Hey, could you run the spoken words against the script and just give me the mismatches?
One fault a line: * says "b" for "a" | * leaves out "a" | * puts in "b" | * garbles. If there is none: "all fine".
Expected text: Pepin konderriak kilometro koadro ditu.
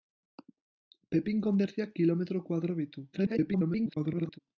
* garbles